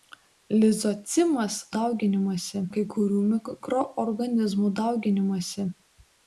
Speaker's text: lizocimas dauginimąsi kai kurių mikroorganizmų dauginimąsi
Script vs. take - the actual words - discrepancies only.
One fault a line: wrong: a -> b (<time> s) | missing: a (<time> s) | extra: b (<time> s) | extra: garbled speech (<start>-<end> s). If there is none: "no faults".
no faults